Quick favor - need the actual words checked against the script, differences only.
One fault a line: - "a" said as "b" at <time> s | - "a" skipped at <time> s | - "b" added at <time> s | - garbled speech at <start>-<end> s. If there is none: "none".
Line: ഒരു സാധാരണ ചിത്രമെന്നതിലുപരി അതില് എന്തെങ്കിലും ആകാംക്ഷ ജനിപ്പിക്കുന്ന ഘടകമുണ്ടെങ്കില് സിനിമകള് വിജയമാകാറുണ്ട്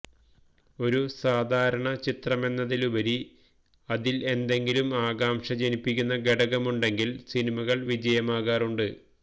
none